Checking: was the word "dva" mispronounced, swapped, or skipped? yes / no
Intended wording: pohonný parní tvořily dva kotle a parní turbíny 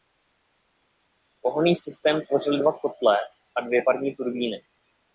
no